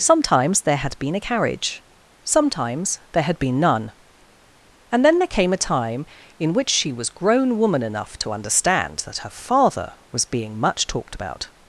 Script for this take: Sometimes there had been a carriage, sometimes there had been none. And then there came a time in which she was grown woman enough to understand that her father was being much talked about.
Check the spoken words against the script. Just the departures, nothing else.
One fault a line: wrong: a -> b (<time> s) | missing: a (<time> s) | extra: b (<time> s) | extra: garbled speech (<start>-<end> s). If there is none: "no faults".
no faults